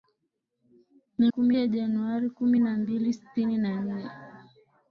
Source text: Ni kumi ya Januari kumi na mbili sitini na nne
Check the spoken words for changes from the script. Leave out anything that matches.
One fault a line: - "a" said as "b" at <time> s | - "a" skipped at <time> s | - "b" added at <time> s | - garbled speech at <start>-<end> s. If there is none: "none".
none